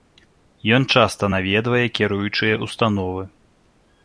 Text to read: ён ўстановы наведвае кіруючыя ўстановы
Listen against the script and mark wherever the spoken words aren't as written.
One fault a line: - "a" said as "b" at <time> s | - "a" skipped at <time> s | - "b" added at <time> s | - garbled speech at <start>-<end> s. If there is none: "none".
- "ўстановы" said as "часта" at 0.9 s